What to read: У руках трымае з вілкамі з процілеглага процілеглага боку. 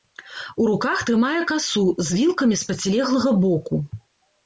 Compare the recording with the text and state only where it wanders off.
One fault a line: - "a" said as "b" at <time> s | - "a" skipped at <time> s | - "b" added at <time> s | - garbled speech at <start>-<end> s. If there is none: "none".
- "касу" added at 1.5 s
- "процілеглага" skipped at 3.4 s